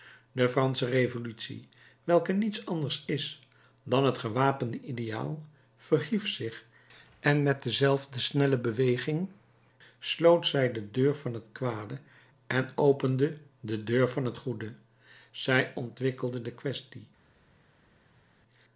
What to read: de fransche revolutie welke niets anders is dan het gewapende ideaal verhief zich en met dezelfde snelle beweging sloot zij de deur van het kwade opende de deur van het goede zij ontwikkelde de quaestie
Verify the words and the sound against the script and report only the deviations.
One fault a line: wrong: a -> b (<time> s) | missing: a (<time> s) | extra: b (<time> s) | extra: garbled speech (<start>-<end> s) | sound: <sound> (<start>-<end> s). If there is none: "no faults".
extra: en (12.5 s)